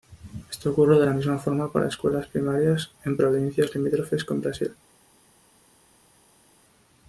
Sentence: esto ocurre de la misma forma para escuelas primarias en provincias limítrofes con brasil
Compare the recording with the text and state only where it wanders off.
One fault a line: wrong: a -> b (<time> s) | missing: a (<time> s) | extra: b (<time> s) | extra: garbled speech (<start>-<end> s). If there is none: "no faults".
no faults